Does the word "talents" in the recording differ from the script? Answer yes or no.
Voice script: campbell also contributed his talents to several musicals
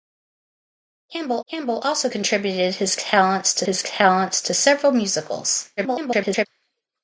no